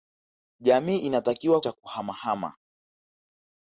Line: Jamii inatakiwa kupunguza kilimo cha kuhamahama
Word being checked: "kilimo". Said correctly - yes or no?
no